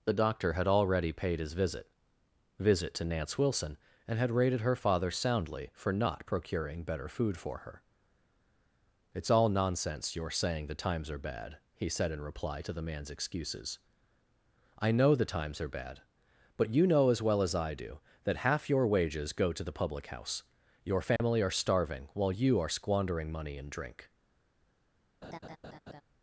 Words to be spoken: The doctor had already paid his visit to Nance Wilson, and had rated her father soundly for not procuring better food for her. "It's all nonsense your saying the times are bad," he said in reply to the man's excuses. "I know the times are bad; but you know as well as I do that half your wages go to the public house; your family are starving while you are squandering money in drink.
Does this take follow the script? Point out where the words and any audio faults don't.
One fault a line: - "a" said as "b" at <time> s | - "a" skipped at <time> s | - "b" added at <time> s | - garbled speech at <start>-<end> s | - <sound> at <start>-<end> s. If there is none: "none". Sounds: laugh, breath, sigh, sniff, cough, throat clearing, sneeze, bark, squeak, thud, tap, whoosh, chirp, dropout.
- "visit" added at 2.6 s
- dropout at 21.2-21.2 s
- laugh at 25.2-26.0 s